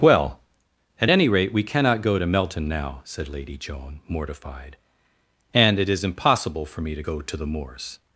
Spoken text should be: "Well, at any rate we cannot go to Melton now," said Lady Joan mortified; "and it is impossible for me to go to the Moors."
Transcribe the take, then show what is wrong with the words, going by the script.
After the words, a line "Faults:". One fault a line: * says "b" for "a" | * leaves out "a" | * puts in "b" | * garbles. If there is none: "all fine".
"Well, at any rate we cannot go to Melton now," said Lady Joan mortified; "and it is impossible for me to go to the Moors."
Faults:
all fine